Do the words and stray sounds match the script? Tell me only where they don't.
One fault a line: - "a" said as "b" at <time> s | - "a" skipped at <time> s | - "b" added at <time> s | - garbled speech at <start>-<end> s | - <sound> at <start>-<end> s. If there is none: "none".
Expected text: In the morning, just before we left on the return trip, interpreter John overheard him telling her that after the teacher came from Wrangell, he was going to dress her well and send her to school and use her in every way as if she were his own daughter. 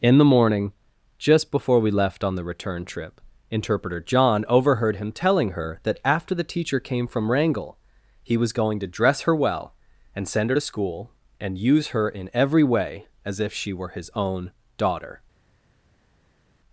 none